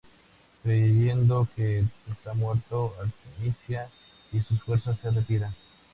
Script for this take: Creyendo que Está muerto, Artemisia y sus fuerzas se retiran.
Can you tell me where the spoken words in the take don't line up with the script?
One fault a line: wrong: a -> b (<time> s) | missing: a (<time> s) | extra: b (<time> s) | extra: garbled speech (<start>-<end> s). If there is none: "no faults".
no faults